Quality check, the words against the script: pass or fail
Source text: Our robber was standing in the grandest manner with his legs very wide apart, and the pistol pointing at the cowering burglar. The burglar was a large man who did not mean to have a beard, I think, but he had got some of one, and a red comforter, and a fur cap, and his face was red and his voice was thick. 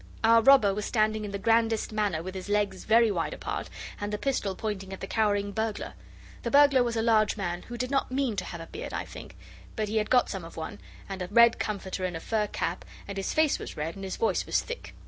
pass